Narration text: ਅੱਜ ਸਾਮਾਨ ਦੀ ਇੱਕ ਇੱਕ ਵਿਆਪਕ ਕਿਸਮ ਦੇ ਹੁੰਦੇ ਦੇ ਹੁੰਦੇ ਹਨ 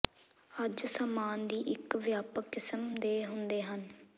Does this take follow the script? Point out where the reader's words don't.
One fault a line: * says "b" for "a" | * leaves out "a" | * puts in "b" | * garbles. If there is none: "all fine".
* leaves out "ਇੱਕ"
* leaves out "ਦੇ ਹੁੰਦੇ"